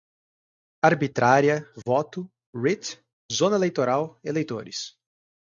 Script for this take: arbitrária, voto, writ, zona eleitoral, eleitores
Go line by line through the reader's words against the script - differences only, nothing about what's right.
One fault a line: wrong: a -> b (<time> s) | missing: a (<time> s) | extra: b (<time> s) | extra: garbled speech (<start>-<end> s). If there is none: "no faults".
no faults